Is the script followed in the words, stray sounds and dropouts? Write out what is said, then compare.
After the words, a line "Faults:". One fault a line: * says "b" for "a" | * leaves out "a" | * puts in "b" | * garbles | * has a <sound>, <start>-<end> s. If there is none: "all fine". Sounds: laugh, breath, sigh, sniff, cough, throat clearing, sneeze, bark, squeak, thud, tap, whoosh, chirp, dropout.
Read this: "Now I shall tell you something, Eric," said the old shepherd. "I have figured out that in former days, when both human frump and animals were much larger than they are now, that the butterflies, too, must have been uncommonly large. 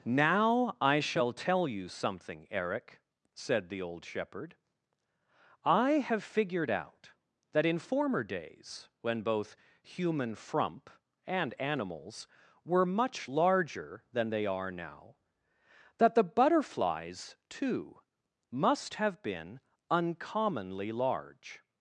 "Now I shall tell you something, Eric," said the old shepherd. "I have figured out that in former days, when both human frump and animals were much larger than they are now, that the butterflies, too, must have been uncommonly large.
Faults:
all fine